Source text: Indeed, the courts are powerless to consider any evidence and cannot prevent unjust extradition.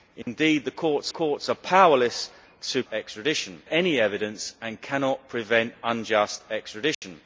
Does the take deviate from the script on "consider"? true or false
true